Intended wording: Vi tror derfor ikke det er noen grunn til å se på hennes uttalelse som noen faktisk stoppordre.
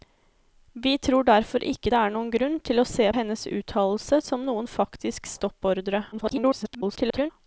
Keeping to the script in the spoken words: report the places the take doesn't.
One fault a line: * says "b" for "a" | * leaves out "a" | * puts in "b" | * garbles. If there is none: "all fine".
* leaves out "på"
* garbles